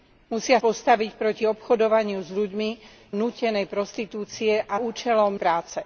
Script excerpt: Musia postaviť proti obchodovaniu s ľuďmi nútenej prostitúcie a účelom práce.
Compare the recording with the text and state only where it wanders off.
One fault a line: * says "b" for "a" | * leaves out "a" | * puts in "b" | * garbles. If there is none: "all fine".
all fine